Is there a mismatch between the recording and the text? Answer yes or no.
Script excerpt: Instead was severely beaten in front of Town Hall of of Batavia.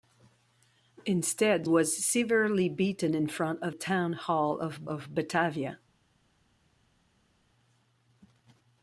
no